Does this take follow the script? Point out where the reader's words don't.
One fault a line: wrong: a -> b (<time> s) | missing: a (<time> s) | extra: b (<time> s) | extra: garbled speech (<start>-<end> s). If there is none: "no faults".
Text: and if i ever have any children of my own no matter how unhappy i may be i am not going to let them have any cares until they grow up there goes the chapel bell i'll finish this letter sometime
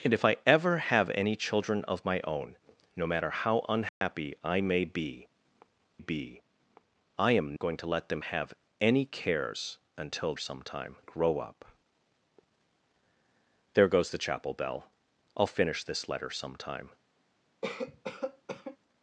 extra: be (6.0 s)
missing: not (7.6 s)
wrong: they -> sometime (10.4 s)